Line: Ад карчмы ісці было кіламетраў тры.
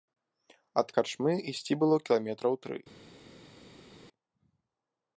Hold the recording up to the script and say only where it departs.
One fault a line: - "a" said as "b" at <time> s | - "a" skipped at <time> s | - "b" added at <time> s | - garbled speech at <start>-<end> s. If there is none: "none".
none